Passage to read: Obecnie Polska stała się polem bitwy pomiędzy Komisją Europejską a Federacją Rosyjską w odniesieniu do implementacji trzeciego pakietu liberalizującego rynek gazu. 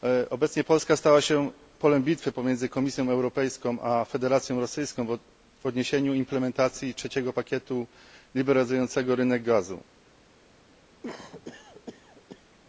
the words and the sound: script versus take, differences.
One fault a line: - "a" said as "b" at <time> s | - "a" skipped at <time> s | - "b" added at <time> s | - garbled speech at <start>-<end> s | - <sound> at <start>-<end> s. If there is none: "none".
- cough at 11.0-12.6 s